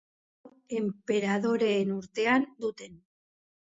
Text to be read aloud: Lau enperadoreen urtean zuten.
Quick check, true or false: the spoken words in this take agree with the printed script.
true